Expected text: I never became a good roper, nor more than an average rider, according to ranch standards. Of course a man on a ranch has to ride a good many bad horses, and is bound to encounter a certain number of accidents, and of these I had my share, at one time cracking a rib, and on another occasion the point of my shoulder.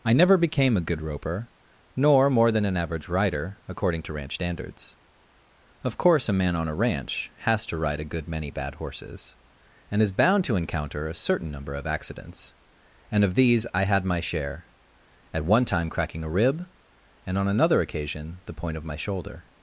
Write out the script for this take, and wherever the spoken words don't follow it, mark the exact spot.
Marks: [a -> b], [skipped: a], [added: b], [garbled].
I never became a good roper, nor more than an average rider, according to ranch standards. Of course a man on a ranch has to ride a good many bad horses, and is bound to encounter a certain number of accidents, and of these I had my share, at one time cracking a rib, and on another occasion the point of my shoulder.